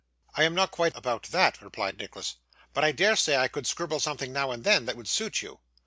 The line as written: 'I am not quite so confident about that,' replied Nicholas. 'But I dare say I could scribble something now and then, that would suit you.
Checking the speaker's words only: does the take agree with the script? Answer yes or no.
no